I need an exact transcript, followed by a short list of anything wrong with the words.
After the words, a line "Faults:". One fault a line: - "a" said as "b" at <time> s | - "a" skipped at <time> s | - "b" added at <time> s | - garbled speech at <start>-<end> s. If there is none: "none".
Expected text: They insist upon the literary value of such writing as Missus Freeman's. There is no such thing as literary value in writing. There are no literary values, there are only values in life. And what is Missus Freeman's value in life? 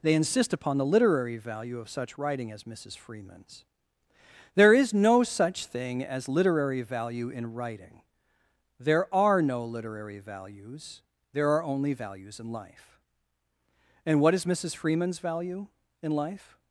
They insist upon the literary value of such writing as Missus Freeman's. There is no such thing as literary value in writing. There are no literary values, there are only values in life. And what is Missus Freeman's value in life?
Faults:
none